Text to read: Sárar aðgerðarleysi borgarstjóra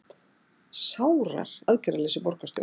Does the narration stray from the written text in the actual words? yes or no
no